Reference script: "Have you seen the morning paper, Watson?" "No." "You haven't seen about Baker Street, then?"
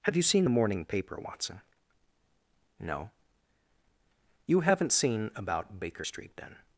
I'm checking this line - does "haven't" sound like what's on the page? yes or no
yes